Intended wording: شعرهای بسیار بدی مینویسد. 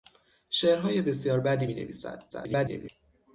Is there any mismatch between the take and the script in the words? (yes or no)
yes